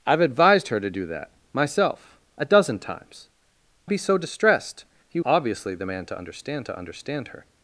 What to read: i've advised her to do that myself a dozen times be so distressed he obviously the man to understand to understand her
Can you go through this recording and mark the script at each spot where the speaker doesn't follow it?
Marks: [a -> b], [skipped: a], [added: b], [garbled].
i've advised her to do that myself a dozen times be so distressed he obviously the man to understand to understand her